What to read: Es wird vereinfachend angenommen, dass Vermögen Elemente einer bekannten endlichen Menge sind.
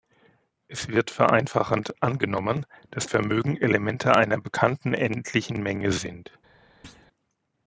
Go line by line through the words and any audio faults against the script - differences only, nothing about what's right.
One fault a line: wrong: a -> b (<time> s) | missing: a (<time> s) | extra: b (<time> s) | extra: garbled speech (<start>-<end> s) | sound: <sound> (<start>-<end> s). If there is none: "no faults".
sound: thud (6.8-7.1 s)